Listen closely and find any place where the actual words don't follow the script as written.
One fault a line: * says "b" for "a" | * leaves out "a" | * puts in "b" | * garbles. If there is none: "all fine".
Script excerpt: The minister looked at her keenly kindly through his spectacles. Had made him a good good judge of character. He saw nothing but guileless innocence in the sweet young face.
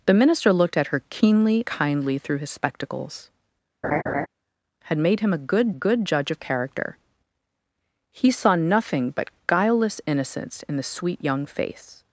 all fine